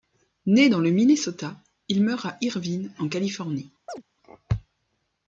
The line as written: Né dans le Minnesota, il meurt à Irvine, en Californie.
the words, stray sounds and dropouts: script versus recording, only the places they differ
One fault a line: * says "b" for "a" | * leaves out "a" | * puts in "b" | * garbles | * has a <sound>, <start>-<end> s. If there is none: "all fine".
* has a chirp, 3.9-4.0 s